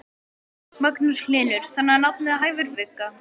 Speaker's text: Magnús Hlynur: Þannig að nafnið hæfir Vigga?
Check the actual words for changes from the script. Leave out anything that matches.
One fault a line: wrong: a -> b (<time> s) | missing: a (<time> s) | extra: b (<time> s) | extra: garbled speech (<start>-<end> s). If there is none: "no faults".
no faults